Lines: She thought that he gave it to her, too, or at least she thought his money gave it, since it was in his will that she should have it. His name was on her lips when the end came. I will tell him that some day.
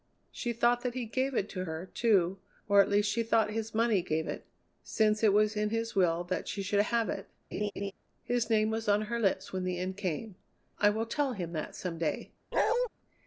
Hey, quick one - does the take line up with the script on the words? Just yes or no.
yes